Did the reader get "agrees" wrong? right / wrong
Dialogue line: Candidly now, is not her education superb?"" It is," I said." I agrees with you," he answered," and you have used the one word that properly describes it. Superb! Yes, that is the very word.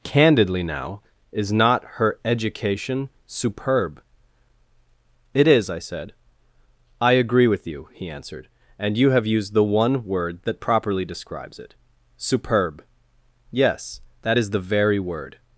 wrong